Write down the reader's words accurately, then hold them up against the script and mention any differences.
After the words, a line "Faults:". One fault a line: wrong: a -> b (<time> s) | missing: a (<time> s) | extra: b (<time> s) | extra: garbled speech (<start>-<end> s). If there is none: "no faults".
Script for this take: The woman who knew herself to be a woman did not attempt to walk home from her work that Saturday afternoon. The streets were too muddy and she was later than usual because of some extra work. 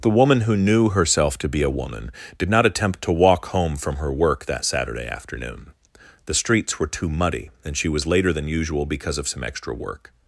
The woman who knew herself to be a woman did not attempt to walk home from her work that Saturday afternoon. The streets were too muddy and she was later than usual because of some extra work.
Faults:
no faults